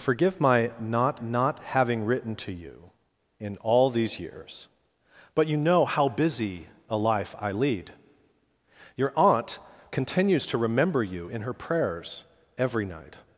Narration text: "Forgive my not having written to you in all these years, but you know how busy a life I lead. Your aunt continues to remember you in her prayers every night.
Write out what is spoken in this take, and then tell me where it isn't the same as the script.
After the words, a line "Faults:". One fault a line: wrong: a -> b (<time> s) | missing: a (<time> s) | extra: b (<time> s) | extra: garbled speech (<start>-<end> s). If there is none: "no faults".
"Forgive my not not having written to you in all these years, but you know how busy a life I lead. Your aunt continues to remember you in her prayers every night.
Faults:
extra: not (1.2 s)